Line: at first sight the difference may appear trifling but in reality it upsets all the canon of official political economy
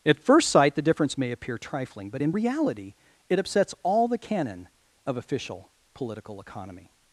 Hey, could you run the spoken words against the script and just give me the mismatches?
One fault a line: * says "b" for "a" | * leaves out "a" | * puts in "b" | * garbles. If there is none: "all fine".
all fine